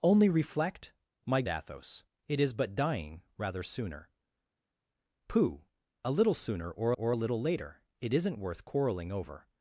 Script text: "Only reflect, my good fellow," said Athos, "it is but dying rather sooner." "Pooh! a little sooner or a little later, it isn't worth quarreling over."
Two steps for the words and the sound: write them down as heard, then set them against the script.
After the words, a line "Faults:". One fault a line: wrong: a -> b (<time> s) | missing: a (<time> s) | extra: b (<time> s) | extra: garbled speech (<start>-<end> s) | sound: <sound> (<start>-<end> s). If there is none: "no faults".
"Only reflect, my Athos, "it is but dying rather sooner." "Pooh! a little sooner or or a little later, it isn't worth quarreling over."
Faults:
missing: good fellow said (1.4 s)
extra: or (6.9 s)